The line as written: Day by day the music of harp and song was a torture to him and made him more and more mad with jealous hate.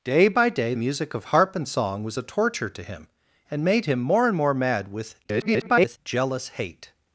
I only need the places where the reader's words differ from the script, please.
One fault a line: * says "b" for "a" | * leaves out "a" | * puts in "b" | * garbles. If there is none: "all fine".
* leaves out "the"
* garbles